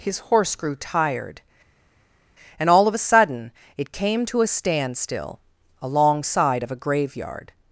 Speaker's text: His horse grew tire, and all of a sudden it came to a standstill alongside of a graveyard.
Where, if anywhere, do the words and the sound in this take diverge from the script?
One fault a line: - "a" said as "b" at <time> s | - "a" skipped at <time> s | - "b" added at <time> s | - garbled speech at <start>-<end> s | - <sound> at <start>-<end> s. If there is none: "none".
- "tire" said as "tired" at 0.8 s